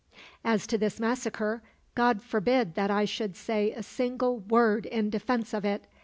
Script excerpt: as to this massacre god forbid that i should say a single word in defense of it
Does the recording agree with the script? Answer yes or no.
yes